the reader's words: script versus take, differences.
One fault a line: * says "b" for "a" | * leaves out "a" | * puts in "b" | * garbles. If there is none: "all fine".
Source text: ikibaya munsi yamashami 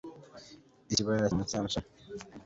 all fine